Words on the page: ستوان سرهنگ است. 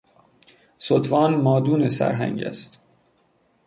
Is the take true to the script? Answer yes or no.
no